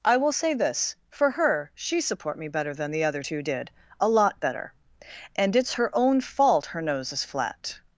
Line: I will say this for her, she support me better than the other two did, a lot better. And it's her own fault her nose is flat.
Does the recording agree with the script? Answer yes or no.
yes